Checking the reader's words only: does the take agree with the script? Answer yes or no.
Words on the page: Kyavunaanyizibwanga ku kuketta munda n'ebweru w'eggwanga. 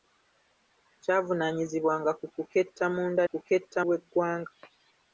no